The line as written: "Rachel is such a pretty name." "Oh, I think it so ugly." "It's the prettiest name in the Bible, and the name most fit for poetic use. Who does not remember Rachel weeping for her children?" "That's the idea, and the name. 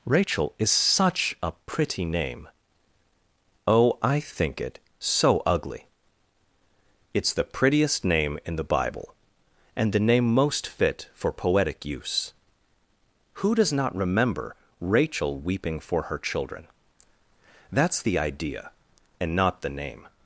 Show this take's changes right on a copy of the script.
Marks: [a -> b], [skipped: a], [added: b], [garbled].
"Rachel is such a pretty name." "Oh, I think it so ugly." "It's the prettiest name in the Bible, and the name most fit for poetic use. Who does not remember Rachel weeping for her children?" "That's the idea, and [added: not] the name.